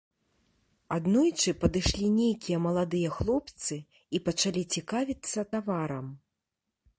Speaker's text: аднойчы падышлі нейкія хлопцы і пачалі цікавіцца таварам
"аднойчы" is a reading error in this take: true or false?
false